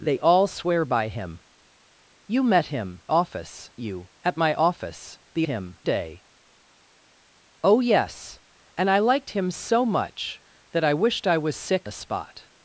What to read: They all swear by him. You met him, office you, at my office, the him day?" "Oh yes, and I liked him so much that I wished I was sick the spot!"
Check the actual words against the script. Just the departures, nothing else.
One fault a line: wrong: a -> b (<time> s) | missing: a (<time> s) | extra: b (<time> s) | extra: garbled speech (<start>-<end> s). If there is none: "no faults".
no faults